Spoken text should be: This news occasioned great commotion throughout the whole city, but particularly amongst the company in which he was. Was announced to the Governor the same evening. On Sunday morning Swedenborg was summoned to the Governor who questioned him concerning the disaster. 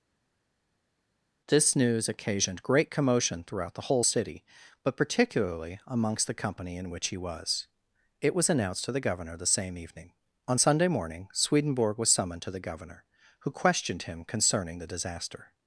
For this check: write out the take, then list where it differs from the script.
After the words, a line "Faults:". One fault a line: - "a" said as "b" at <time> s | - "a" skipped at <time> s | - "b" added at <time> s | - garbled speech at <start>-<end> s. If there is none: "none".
This news occasioned great commotion throughout the whole city, but particularly amongst the company in which he was. It was announced to the Governor the same evening. On Sunday morning Swedenborg was summoned to the Governor who questioned him concerning the disaster.
Faults:
- "It" added at 8.2 s